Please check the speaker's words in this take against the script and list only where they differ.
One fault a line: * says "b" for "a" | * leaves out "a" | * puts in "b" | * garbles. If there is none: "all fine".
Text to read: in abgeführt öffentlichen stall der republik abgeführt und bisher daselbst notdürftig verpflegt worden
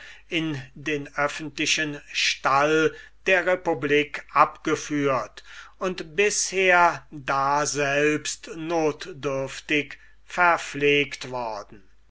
* says "den" for "abgeführt"